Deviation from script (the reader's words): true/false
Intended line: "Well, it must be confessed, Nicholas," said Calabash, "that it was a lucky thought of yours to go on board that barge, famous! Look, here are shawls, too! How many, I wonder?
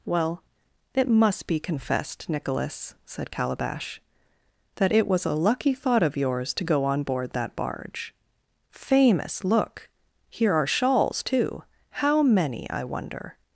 false